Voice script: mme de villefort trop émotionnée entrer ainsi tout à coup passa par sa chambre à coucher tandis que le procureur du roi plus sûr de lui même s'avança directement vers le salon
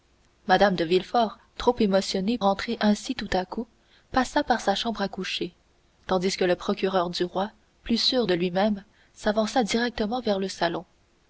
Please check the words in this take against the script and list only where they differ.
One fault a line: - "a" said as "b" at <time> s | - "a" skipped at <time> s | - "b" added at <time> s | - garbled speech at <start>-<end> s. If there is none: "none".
none